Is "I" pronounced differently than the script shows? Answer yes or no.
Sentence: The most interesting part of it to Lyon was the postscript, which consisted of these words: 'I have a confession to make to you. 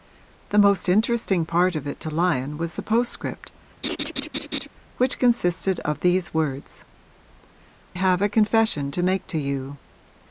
yes